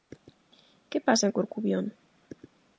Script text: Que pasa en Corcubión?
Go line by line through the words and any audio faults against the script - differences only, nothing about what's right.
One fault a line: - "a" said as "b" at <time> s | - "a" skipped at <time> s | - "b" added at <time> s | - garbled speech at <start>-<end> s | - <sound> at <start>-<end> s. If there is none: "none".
none